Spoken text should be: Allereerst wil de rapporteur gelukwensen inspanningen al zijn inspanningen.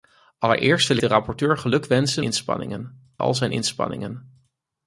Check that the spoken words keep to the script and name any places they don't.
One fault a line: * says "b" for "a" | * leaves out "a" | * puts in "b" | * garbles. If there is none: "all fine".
all fine